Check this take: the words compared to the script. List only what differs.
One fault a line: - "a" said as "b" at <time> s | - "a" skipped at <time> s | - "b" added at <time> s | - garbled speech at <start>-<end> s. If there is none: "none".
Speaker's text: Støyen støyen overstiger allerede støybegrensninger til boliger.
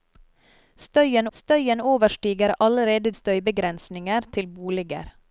none